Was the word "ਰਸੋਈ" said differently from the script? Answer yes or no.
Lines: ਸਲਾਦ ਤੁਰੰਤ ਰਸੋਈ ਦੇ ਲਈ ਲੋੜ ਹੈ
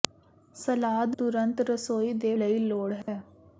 no